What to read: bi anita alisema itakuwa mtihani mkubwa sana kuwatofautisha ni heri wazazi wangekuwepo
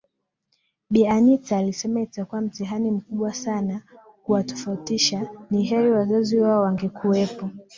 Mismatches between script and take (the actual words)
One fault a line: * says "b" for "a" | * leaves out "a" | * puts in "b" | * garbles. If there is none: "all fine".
* puts in "wao"